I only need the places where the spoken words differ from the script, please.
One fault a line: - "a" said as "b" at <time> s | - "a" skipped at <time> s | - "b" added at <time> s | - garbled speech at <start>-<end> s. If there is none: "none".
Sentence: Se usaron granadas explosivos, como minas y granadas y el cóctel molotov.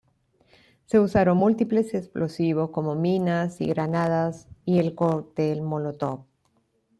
- "granadas" said as "múltiples" at 1.4 s